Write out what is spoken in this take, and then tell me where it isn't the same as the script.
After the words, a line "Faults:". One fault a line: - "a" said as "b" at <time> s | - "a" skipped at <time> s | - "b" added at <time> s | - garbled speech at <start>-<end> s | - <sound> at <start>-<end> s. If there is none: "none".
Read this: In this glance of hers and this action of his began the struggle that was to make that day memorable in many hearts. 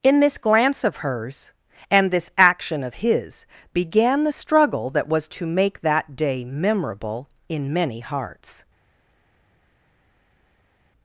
In this glance of hers and this action of his began the struggle that was to make that day memorable in many hearts.
Faults:
none